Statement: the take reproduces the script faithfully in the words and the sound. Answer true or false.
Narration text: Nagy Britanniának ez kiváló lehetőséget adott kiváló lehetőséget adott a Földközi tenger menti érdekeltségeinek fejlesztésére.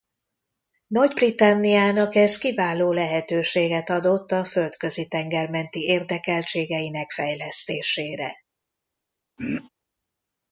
false